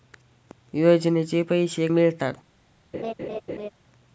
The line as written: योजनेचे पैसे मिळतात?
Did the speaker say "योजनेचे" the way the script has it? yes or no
yes